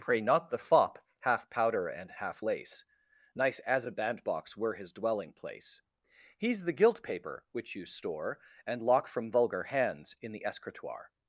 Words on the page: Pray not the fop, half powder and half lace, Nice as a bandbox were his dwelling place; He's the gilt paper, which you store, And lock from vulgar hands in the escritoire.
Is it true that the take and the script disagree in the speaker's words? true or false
false